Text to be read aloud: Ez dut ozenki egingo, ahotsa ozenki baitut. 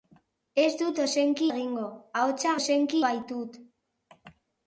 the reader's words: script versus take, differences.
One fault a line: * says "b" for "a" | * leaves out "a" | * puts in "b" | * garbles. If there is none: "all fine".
all fine